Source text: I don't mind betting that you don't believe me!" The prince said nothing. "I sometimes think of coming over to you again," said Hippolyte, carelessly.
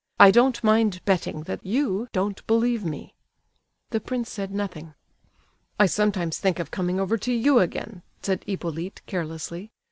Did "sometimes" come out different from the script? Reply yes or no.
no